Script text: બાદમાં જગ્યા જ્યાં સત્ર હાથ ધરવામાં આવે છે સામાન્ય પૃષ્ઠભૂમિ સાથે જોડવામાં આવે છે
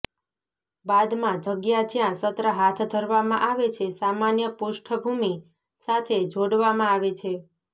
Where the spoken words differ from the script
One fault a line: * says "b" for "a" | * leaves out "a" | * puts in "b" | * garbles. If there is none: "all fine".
all fine